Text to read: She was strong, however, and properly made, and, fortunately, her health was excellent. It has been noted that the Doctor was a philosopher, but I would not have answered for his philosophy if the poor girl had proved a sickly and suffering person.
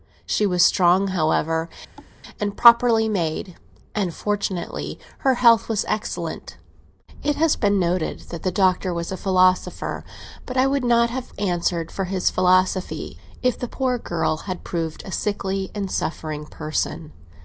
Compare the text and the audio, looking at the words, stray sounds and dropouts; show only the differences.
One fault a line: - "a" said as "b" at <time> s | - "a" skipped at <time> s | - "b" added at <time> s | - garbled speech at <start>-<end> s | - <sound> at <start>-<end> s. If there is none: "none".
- thud at 2.0-2.2 s